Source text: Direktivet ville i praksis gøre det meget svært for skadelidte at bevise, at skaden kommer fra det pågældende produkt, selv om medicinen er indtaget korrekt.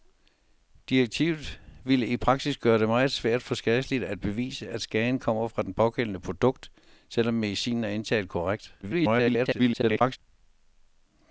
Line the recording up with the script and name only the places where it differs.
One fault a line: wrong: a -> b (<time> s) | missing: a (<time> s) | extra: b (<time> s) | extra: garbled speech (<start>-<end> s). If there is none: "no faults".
extra: garbled speech (8.8-10.2 s)